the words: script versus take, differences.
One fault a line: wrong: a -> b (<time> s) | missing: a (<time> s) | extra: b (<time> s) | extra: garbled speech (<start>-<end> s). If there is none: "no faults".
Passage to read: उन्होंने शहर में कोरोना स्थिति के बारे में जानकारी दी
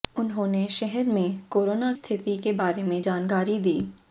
no faults